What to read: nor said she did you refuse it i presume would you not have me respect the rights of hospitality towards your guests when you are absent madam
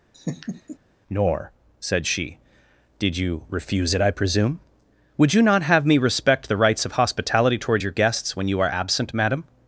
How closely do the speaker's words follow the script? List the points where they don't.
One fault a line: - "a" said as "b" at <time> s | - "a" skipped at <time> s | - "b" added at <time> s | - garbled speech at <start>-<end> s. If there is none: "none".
none